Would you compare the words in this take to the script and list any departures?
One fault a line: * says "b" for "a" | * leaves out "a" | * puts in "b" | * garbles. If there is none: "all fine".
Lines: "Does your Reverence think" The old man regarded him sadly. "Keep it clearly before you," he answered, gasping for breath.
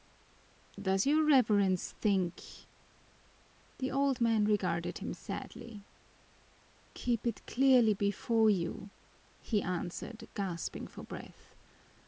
all fine